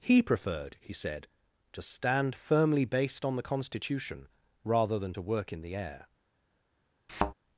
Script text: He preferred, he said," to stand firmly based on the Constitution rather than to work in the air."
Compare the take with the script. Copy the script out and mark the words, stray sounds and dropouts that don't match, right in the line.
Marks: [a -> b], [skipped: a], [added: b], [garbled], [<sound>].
He preferred, he said," to stand firmly based on the Constitution rather than to work in the air." [thud]